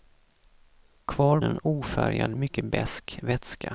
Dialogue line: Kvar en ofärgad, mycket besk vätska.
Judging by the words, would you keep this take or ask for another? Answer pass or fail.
pass